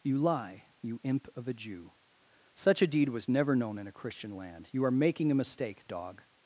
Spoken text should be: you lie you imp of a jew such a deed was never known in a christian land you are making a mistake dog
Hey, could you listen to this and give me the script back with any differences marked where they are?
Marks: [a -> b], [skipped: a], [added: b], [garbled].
you lie you imp of a jew such a deed was never known in a christian land you are making a mistake dog